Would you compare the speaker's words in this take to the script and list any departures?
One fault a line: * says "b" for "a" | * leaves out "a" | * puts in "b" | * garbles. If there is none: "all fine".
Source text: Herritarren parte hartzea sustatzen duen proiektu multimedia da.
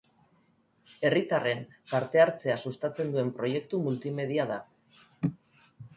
all fine